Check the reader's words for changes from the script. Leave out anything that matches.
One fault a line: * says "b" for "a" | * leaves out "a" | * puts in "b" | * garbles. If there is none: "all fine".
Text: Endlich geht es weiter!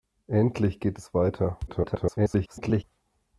* garbles